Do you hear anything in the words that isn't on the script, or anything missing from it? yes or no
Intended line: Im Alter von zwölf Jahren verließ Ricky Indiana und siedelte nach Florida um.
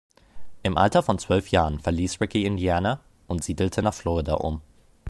no